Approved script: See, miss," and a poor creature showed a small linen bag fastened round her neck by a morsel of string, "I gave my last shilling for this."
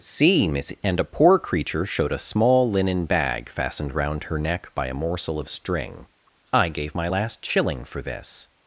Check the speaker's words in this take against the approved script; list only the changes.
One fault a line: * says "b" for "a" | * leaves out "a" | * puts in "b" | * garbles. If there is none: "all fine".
all fine